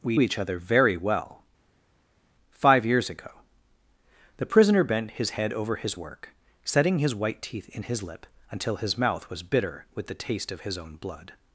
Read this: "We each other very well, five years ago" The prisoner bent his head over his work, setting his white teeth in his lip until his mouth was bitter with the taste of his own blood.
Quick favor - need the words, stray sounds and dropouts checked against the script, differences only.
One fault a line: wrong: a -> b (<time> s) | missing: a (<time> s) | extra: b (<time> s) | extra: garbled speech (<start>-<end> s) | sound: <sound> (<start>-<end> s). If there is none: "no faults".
no faults